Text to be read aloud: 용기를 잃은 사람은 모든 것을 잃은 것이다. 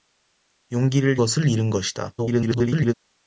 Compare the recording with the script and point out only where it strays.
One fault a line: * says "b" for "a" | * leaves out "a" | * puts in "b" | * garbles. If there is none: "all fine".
* leaves out "잃은 사람은 모든"
* garbles